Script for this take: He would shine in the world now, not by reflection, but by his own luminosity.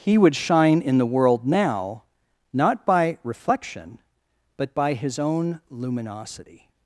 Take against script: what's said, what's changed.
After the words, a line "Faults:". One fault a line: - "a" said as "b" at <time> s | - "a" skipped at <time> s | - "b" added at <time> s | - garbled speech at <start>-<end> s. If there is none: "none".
He would shine in the world now, not by reflection, but by his own luminosity.
Faults:
none